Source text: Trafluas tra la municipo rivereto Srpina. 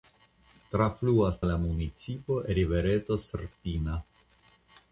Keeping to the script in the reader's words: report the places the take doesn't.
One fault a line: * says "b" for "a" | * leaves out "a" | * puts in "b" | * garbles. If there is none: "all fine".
* leaves out "tra"